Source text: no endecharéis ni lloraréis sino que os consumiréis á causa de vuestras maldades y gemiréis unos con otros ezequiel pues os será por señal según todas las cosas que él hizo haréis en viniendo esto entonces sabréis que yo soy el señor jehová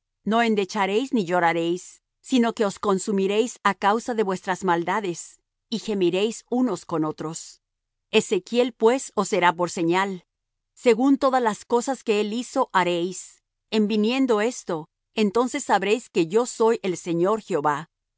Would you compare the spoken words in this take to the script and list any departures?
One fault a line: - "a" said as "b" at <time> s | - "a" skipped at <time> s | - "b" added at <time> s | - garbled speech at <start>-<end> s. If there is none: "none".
none